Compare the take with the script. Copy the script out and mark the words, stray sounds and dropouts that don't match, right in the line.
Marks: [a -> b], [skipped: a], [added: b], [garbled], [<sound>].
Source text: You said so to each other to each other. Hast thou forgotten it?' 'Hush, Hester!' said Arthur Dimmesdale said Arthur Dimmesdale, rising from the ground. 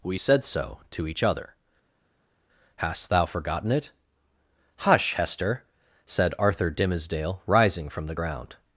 [You -> We] said so to each other [skipped: to each other.] Hast thou forgotten it?' 'Hush, Hester!' said Arthur Dimmesdale [skipped: said Arthur Dimmesdale,] rising from the ground.